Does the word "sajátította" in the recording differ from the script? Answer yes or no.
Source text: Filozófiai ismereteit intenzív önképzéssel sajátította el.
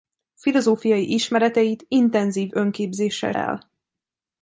yes